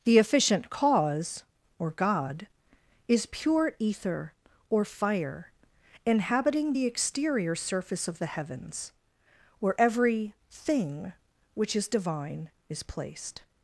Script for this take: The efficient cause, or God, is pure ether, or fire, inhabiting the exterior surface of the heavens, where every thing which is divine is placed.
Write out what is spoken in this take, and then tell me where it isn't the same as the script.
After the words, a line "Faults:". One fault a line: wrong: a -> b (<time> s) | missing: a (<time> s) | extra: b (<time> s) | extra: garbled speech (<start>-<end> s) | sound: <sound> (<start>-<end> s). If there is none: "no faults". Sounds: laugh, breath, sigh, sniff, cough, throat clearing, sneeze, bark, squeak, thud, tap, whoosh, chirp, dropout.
The efficient cause, or God, is pure ether, or fire, inhabiting the exterior surface of the heavens, where every thing which is divine is placed.
Faults:
no faults